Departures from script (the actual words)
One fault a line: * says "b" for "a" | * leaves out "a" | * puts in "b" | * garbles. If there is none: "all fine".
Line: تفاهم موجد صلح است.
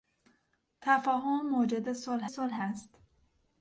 * puts in "صلح"